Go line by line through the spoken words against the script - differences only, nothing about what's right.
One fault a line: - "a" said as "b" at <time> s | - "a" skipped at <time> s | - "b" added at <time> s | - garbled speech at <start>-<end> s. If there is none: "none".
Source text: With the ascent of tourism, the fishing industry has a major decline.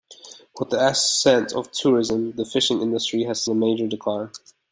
none